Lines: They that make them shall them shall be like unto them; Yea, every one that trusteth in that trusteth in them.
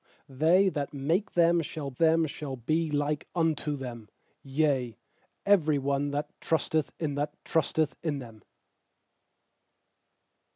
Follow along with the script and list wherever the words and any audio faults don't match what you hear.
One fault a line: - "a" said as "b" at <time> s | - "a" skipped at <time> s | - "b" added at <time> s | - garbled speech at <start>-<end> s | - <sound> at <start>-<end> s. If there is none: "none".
none